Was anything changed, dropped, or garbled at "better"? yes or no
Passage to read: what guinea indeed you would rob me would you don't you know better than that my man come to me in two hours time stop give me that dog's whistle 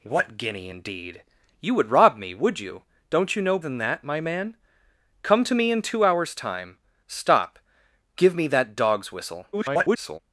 yes